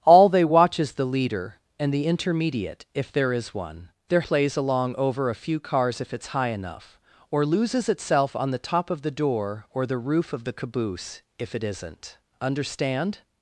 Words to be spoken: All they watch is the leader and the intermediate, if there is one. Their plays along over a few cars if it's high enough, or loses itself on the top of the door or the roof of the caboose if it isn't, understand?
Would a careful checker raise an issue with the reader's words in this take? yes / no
no